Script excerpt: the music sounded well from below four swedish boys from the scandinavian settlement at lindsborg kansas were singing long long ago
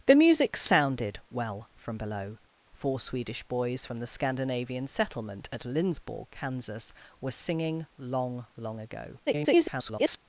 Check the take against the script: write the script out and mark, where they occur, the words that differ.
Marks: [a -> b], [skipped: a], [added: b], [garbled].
the music sounded well from below four swedish boys from the scandinavian settlement at lindsborg kansas were singing long long ago [garbled]